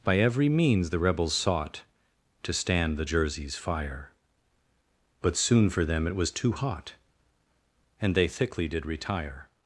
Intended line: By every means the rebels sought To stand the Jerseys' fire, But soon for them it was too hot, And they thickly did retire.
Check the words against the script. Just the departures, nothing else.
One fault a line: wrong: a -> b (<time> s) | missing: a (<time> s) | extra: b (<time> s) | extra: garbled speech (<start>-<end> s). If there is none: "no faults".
no faults